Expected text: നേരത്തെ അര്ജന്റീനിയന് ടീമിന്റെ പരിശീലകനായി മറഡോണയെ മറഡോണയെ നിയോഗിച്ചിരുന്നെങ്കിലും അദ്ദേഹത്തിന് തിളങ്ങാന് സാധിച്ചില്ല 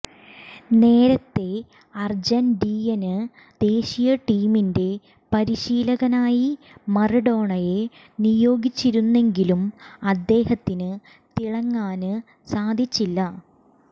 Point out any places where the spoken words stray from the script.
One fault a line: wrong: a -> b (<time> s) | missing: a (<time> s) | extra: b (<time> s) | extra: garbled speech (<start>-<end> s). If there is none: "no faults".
extra: ദേശീയ (3.6 s)
missing: മറഡോണയെ (7.8 s)